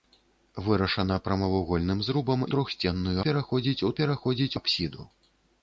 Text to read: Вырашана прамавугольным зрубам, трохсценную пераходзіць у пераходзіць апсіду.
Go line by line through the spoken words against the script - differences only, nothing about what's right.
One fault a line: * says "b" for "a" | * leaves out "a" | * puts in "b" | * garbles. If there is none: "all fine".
all fine